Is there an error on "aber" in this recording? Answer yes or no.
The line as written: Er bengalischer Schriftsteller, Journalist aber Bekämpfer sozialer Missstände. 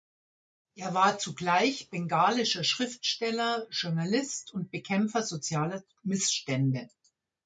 yes